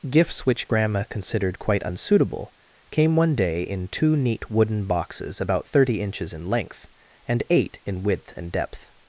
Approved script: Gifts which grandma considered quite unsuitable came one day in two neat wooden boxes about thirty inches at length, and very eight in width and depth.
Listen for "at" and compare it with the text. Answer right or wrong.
wrong